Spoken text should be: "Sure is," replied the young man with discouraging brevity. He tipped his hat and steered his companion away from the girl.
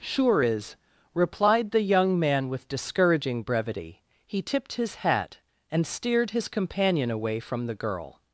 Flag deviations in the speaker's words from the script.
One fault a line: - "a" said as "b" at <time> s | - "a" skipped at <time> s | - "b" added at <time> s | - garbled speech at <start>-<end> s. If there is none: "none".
none